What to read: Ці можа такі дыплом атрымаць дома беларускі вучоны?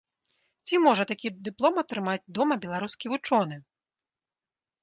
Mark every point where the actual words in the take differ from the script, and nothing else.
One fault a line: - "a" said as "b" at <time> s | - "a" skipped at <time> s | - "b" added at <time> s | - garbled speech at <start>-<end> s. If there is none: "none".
none